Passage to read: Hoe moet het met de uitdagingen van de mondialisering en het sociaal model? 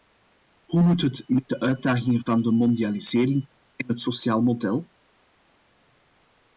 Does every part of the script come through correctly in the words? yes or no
yes